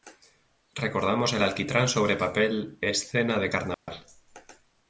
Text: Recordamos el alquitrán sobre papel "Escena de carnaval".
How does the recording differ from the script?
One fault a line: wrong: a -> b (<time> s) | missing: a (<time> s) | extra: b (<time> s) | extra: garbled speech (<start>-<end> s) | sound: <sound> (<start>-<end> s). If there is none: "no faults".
sound: dropout (3.7-3.9 s)